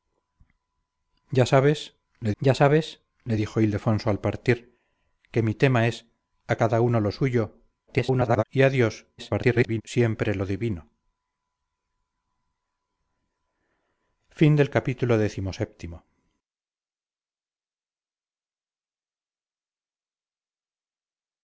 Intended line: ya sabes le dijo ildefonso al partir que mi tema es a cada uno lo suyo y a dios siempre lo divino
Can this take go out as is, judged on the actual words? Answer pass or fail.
fail